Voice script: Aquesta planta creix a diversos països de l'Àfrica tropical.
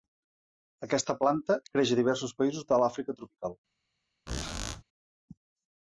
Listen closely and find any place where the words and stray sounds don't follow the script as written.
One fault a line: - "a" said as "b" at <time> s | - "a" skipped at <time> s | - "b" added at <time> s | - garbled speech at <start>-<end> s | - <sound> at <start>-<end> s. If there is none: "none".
- squeak at 4.3-4.8 s